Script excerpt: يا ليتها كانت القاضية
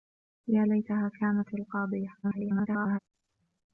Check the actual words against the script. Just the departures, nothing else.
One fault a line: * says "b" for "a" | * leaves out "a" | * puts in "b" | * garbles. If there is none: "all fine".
* garbles